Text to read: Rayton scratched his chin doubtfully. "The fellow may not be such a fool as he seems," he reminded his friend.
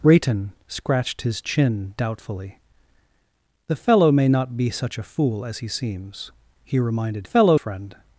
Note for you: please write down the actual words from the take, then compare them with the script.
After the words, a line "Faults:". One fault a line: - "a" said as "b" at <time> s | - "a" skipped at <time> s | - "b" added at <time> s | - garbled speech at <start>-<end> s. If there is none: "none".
Rayton scratched his chin doubtfully. "The fellow may not be such a fool as he seems," he reminded fellow friend.
Faults:
- "his" said as "fellow" at 7.2 s